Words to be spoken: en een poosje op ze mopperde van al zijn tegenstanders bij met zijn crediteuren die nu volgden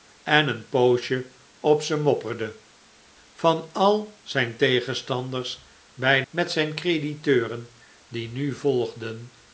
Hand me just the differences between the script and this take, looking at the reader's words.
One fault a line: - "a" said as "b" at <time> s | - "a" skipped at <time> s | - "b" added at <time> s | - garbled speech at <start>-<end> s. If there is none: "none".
none